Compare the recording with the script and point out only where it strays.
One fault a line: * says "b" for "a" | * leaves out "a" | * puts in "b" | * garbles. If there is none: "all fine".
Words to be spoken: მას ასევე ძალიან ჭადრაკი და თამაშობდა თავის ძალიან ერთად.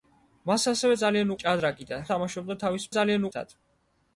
all fine